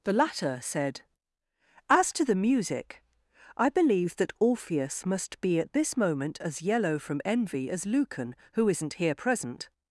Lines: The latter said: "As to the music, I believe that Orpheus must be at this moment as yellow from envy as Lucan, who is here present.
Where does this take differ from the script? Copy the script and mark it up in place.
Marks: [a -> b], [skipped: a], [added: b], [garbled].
The latter said: "As to the music, I believe that Orpheus must be at this moment as yellow from envy as Lucan, who [is -> isn't] here present.